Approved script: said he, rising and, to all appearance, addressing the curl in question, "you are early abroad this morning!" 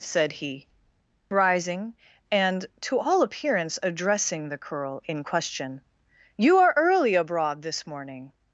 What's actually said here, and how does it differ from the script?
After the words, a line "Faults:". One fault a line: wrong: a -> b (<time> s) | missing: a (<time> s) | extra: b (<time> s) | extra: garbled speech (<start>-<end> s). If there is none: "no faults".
said he, rising and, to all appearance, addressing the curl in question, "you are early abroad this morning!"
Faults:
no faults